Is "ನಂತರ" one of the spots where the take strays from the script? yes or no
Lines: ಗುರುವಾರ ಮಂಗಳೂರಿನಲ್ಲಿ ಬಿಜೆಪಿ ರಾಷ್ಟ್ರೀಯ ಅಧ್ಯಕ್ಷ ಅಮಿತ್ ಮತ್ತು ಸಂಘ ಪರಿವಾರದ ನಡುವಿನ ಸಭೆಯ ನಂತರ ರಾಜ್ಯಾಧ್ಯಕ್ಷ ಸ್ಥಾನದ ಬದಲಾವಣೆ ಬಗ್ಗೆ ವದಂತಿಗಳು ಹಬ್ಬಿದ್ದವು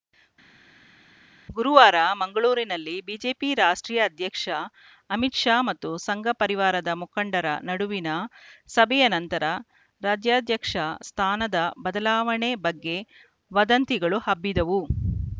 no